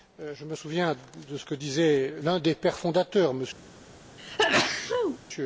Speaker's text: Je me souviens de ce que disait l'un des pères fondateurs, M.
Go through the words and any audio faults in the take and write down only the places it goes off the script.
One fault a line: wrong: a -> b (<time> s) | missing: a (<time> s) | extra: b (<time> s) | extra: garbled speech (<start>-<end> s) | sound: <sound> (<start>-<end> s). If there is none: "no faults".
sound: sneeze (4.2-5.2 s)